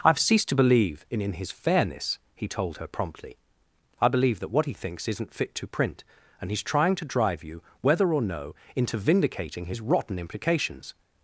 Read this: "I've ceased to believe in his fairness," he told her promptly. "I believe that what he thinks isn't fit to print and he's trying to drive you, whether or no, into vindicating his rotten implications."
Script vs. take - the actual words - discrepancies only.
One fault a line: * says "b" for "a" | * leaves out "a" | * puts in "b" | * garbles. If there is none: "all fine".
* puts in "in"